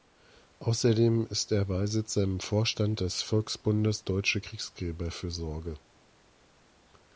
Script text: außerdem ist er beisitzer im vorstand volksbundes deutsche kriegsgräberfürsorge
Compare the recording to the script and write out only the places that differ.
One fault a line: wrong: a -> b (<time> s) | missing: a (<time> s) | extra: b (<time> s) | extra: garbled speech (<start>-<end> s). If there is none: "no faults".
extra: des (3.0 s)